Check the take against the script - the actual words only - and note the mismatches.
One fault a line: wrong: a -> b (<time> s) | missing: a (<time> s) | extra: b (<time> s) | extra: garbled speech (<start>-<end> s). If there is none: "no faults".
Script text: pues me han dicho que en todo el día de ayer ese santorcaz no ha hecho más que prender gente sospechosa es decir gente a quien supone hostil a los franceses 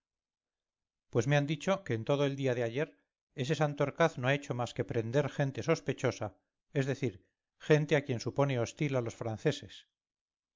no faults